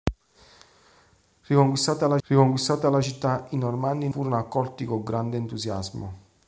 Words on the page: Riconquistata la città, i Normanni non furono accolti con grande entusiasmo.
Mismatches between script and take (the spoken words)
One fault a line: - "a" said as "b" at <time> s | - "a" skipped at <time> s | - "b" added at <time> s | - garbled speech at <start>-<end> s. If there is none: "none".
- "riconquistata la" added at 2.2 s
- "non" skipped at 4.1 s